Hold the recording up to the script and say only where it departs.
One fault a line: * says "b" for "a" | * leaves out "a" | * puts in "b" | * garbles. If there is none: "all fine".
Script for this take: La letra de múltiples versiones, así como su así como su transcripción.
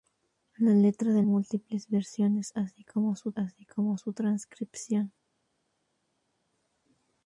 all fine